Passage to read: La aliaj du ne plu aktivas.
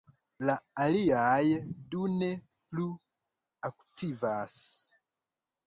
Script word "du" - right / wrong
right